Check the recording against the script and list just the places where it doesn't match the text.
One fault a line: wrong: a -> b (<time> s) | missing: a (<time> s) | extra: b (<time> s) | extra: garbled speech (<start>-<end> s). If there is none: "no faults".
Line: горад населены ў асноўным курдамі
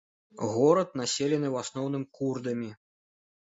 no faults